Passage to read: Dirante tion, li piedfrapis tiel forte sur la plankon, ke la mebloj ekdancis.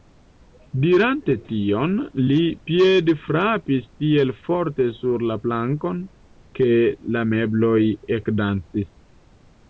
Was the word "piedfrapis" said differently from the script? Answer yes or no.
no